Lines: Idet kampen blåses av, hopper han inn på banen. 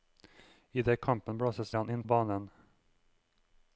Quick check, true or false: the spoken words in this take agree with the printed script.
false